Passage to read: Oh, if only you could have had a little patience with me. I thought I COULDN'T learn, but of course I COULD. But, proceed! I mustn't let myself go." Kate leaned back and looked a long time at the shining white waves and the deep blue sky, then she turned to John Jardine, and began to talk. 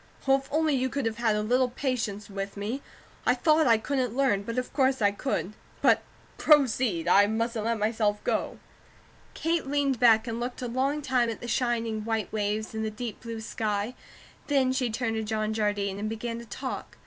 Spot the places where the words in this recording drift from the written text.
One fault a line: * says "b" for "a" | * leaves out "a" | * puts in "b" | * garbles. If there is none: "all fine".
all fine